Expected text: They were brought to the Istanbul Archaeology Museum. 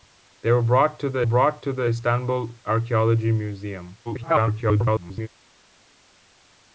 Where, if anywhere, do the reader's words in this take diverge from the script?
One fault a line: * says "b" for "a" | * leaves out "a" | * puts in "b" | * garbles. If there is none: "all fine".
* puts in "brought to the"
* garbles